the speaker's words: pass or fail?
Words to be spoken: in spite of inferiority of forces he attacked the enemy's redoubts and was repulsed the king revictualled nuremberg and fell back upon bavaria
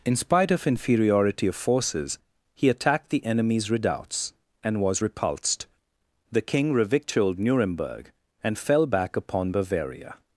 pass